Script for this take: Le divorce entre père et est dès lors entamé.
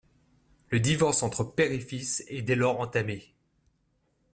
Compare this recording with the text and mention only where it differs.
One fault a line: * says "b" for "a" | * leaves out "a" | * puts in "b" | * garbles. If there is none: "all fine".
* puts in "fils"